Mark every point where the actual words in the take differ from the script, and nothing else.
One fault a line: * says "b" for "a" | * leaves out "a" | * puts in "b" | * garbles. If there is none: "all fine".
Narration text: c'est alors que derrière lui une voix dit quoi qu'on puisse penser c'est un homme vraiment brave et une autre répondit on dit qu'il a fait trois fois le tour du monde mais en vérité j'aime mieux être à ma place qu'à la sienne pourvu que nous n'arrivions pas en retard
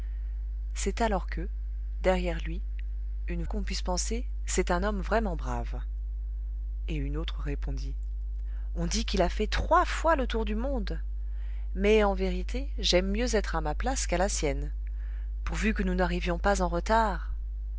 * leaves out "voix dit quoi"